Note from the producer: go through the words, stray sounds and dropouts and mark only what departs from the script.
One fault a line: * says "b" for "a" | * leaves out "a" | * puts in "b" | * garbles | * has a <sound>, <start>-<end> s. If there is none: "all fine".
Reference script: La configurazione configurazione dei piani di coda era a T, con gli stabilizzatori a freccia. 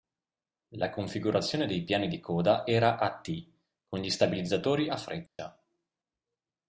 * leaves out "configurazione"
* has a dropout, 5.3-5.4 s